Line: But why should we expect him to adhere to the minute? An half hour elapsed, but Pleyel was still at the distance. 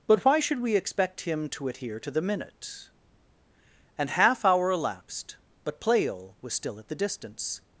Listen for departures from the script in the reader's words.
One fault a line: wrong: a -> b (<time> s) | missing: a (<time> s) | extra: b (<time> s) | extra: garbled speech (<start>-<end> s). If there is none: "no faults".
no faults